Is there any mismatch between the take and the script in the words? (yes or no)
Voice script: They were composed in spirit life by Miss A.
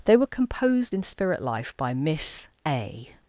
no